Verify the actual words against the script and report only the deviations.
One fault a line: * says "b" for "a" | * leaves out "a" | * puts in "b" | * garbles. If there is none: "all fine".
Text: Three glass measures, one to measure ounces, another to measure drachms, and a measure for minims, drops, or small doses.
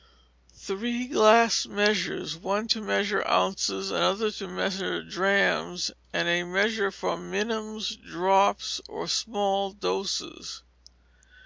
all fine